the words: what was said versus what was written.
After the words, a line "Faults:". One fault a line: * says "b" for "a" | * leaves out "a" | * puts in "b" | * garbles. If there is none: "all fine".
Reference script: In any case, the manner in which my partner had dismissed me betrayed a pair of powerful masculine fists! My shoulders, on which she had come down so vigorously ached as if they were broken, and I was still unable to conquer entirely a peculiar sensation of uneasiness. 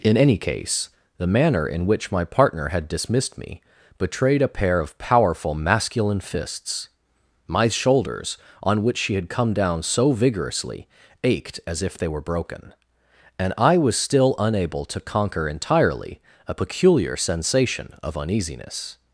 In any case, the manner in which my partner had dismissed me betrayed a pair of powerful masculine fists! My shoulders, on which she had come down so vigorously ached as if they were broken, and I was still unable to conquer entirely a peculiar sensation of uneasiness.
Faults:
all fine